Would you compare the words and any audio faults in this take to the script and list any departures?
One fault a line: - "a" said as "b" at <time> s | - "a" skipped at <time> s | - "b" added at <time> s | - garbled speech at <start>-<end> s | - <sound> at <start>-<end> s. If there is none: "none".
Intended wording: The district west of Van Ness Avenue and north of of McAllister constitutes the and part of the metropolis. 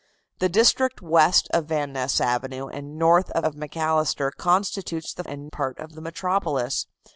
none